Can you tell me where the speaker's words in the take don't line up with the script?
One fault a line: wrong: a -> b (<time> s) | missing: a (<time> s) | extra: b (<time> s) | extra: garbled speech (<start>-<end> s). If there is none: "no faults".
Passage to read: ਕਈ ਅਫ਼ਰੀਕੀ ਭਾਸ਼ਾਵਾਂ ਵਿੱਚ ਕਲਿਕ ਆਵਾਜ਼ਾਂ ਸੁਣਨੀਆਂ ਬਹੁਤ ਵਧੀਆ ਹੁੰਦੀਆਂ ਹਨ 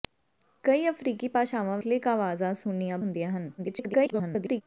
missing: ਵਿੱਚ (1.8 s)
missing: ਬਹੁਤ ਵਧੀਆ (3.0 s)
extra: garbled speech (3.6-4.6 s)